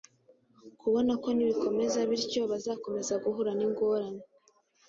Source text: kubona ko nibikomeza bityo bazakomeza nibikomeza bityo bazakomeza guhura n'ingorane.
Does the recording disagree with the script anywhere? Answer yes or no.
yes